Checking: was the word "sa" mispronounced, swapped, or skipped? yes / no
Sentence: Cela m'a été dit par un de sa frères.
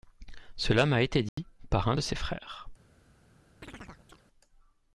yes